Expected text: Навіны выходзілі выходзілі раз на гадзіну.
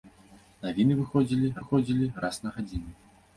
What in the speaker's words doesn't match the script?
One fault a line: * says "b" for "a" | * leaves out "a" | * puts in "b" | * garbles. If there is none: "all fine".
all fine